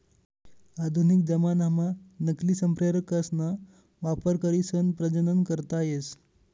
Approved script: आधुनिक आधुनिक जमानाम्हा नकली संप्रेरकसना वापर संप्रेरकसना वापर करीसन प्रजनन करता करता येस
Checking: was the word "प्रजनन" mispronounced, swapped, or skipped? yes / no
no